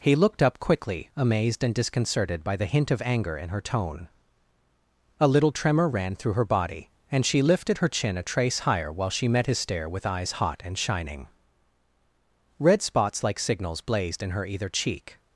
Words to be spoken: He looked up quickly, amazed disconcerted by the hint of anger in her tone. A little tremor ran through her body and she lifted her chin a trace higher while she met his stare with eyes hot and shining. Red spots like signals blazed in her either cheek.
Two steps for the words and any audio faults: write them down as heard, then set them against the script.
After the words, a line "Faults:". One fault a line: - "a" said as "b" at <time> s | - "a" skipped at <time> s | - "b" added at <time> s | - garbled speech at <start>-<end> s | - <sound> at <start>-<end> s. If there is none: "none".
He looked up quickly, amazed and disconcerted by the hint of anger in her tone. A little tremor ran through her body and she lifted her chin a trace higher while she met his stare with eyes hot and shining. Red spots like signals blazed in her either cheek.
Faults:
- "and" added at 1.6 s